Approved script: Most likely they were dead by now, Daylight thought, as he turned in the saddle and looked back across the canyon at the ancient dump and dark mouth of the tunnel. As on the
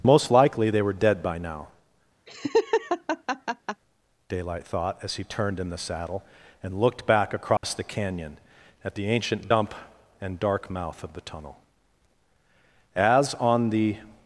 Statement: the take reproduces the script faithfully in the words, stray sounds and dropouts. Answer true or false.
false